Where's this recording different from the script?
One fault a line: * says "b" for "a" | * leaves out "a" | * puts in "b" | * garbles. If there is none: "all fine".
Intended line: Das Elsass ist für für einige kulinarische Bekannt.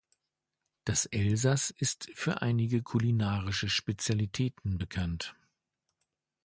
* leaves out "für"
* puts in "Spezialitäten"